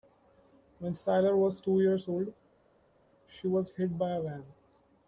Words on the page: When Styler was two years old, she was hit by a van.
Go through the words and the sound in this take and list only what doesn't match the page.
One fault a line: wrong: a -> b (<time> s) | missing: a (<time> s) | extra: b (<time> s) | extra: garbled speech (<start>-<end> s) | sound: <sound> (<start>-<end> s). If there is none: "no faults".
no faults